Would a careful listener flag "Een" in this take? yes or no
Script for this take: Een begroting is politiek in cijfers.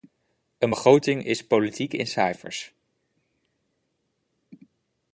no